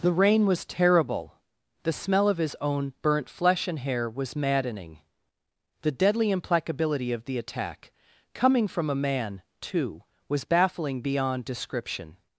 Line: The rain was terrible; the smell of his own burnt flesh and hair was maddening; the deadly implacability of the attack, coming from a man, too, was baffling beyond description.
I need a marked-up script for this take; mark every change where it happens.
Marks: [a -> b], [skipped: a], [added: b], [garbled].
The rain was terrible; the smell of his own burnt flesh and hair was maddening; the deadly implacability of the attack, coming from a man, too, was baffling beyond description.